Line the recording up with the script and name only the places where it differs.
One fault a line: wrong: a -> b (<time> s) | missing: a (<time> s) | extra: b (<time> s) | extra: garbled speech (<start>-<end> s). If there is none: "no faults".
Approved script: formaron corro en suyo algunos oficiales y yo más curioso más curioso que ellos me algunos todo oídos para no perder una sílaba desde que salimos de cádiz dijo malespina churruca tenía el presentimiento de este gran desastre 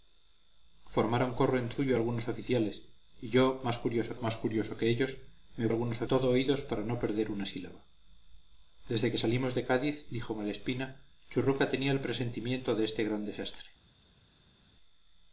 no faults